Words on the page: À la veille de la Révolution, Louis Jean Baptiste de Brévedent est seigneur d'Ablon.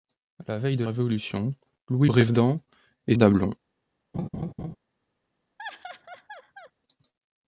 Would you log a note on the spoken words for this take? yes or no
yes